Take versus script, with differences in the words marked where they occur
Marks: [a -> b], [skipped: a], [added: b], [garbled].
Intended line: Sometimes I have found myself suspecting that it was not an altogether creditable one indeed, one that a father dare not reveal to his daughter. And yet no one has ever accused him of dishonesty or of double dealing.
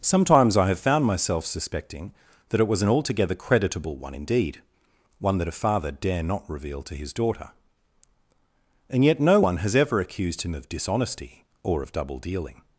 Sometimes I have found myself suspecting that it was [skipped: not] an altogether creditable one indeed, one that a father dare not reveal to his daughter. And yet no one has ever accused him of dishonesty or of double dealing.